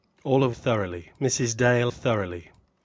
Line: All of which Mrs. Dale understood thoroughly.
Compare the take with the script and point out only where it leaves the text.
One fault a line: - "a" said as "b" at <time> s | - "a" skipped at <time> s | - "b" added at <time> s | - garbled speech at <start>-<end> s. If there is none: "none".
- "which" said as "thoroughly" at 0.5 s
- "understood" skipped at 1.9 s